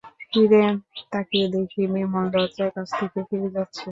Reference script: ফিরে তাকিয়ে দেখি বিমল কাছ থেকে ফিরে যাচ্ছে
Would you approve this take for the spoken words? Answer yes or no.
no